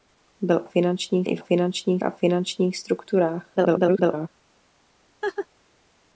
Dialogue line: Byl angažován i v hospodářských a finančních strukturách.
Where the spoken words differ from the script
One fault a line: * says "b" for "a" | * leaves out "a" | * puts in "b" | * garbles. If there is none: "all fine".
* says "finančních" for "angažován"
* says "finančních" for "hospodářských"
* garbles